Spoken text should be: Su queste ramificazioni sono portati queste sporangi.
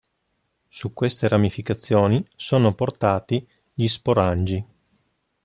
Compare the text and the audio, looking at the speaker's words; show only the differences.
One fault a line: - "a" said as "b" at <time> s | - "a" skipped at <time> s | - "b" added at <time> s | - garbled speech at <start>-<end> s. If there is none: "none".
- "queste" said as "gli" at 3.7 s